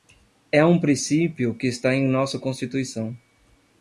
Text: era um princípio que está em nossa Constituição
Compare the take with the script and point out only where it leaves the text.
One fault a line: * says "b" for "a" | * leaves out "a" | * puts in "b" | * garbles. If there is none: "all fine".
* says "é" for "era"